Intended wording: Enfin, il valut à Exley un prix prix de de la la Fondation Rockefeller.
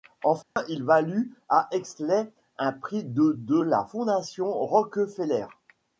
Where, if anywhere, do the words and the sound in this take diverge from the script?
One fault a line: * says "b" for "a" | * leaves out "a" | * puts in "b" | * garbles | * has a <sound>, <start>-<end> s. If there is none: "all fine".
* has a dropout, 0.4-0.6 s
* leaves out "prix"
* leaves out "la"